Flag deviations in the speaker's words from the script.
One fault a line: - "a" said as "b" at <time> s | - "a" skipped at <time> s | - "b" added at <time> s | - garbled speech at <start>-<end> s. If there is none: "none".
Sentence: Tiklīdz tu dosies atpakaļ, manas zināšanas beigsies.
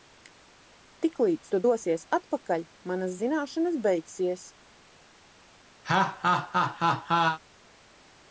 none